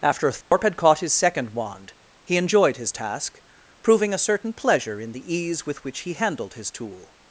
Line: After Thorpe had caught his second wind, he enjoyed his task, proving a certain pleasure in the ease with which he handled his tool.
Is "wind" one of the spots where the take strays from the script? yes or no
yes